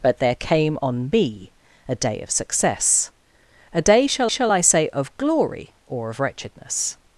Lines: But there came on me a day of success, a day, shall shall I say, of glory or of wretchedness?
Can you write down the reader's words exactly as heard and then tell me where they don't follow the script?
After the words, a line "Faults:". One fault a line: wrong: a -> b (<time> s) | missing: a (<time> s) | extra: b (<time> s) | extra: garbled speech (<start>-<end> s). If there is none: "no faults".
But there came on me a day of success, a day, shall shall I say, of glory or of wretchedness?
Faults:
no faults